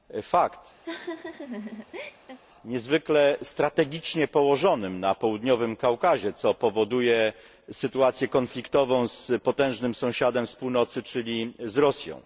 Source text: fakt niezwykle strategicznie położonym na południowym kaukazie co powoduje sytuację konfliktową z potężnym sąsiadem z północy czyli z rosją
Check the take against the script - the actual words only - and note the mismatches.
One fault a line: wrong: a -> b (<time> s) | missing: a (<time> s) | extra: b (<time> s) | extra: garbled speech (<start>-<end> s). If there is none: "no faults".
no faults